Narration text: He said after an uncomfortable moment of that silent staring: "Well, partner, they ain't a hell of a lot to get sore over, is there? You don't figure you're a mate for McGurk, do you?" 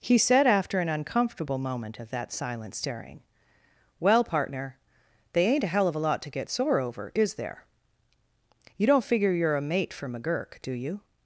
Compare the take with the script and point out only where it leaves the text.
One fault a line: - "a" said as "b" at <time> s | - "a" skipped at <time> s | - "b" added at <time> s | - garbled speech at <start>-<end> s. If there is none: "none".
none